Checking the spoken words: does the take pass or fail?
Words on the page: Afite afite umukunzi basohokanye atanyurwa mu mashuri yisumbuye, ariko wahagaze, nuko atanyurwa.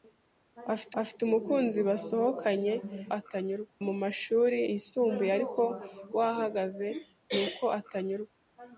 pass